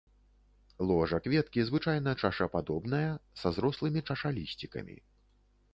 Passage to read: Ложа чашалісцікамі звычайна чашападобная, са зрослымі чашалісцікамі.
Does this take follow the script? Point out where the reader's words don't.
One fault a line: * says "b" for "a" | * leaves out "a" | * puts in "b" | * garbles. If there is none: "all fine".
* says "кветкі" for "чашалісцікамі"